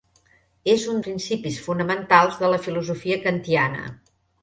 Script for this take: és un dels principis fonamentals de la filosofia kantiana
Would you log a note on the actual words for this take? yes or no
yes